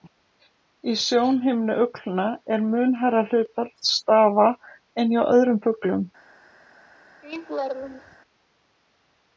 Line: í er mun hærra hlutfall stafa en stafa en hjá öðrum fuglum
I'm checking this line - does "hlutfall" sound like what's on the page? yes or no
yes